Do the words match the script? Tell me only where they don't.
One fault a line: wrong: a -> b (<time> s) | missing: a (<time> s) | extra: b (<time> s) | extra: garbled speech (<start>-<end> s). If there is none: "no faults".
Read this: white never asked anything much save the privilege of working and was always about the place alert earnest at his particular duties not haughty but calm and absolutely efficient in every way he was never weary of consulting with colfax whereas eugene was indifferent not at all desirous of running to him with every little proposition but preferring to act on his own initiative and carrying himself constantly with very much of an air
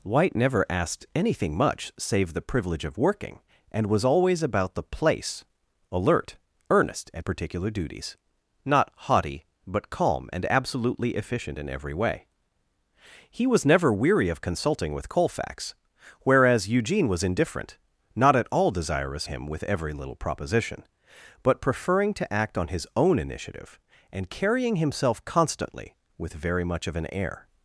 missing: his (7.2 s)
missing: of running to (19.3 s)